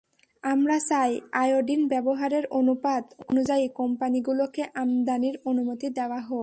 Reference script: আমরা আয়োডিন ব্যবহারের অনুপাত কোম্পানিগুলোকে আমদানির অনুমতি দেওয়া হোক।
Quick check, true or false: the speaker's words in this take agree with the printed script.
false